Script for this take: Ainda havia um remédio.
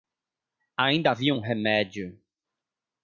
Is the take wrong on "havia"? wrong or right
right